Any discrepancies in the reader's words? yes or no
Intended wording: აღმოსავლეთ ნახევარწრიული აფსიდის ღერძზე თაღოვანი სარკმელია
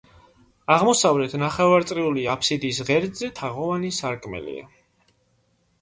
no